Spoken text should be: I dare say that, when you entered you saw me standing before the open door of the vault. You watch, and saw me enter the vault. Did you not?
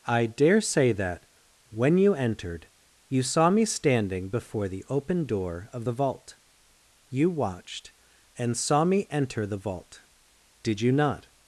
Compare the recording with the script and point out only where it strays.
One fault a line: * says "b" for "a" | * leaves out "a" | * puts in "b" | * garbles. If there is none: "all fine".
* says "watched" for "watch"